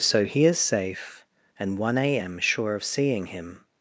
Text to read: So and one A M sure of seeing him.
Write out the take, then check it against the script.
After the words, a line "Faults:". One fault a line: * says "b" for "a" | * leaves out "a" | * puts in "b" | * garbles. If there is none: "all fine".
So he is safe, and one A M sure of seeing him.
Faults:
* puts in "he is safe"